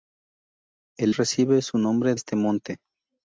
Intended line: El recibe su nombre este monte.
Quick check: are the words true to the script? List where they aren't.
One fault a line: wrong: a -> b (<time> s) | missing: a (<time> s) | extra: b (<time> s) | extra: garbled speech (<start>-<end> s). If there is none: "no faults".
no faults